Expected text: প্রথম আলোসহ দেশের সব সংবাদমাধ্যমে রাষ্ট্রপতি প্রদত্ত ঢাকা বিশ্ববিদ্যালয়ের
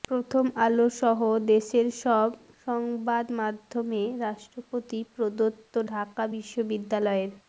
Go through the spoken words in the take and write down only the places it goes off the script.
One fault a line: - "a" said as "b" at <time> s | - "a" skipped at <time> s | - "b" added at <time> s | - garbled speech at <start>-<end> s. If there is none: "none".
none